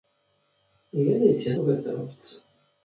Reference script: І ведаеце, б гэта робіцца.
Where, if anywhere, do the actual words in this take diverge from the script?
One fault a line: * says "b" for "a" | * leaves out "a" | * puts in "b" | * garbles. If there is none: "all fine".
all fine